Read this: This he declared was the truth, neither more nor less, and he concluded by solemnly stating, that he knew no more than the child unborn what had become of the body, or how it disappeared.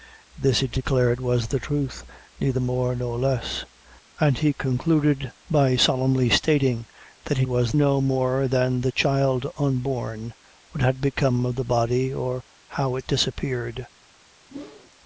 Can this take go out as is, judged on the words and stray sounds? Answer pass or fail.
fail